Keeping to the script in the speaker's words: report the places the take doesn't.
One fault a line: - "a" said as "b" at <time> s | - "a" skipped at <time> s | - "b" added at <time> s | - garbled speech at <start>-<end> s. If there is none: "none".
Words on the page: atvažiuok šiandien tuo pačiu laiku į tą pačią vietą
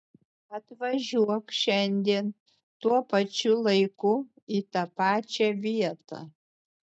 none